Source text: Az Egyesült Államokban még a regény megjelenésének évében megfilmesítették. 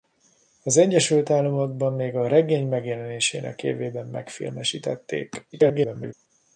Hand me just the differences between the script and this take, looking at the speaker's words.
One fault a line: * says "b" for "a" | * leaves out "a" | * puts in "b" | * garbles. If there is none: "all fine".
* garbles